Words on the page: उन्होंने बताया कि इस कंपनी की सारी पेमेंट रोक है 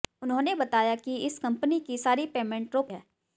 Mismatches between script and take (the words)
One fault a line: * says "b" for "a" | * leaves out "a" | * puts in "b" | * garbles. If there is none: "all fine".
all fine